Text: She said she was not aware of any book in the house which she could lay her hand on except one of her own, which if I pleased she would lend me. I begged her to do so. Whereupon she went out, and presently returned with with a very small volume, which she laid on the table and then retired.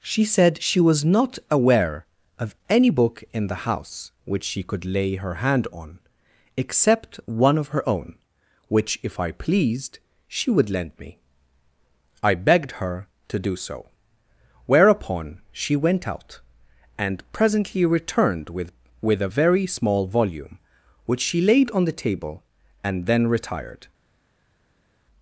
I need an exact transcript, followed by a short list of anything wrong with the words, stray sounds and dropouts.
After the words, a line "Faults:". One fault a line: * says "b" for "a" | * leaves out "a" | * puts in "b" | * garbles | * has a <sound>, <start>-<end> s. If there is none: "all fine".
She said she was not aware of any book in the house which she could lay her hand on except one of her own, which if I pleased she would lend me. I begged her to do so. Whereupon she went out, and presently returned with with a very small volume, which she laid on the table and then retired.
Faults:
all fine